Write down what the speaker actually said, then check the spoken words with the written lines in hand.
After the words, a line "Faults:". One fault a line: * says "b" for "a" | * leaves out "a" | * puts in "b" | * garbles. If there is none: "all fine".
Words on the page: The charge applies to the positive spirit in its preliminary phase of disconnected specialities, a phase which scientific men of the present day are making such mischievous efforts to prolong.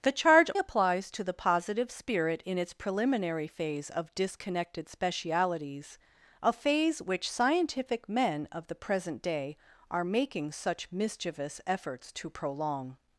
The charge applies to the positive spirit in its preliminary phase of disconnected specialities, a phase which scientific men of the present day are making such mischievous efforts to prolong.
Faults:
all fine